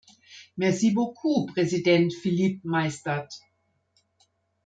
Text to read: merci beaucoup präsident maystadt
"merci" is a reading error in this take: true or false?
false